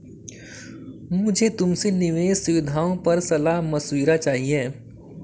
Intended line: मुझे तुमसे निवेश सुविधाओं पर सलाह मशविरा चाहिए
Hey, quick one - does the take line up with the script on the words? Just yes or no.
yes